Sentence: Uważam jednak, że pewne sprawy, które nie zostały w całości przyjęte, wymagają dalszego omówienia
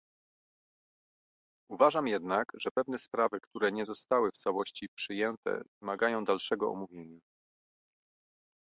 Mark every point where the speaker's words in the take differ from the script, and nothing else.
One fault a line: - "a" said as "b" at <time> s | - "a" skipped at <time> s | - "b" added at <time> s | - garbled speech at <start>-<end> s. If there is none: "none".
none